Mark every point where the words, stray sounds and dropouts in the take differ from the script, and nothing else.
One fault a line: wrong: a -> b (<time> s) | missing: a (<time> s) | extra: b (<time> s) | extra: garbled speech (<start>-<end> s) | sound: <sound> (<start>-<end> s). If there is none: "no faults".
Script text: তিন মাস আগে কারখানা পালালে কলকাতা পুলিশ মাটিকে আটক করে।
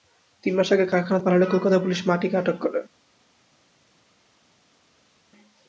no faults